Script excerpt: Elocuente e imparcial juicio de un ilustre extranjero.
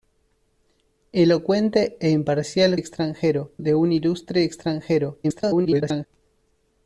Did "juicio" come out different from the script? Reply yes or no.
yes